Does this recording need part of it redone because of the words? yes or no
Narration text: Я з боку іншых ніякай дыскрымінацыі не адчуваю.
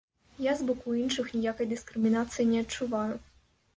no